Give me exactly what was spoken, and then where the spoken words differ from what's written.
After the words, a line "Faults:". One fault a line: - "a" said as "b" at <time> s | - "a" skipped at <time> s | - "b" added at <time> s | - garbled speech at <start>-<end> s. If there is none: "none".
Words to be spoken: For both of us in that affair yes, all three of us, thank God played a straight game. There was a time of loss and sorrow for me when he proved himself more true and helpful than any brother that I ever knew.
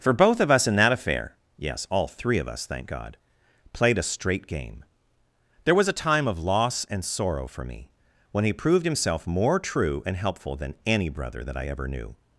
For both of us in that affair yes, all three of us, thank God played a straight game. There was a time of loss and sorrow for me when he proved himself more true and helpful than any brother that I ever knew.
Faults:
none